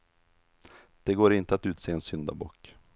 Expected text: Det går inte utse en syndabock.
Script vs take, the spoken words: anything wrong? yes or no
yes